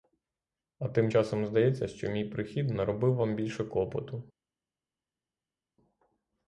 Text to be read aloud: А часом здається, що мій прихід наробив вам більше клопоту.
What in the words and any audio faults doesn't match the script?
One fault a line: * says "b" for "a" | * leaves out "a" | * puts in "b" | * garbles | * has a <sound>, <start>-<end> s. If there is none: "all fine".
* puts in "тим"